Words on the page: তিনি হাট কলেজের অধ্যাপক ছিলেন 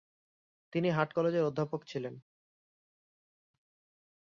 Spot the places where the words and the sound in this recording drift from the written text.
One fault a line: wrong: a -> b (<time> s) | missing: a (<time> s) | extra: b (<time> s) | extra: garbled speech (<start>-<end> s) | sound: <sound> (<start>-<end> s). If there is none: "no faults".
no faults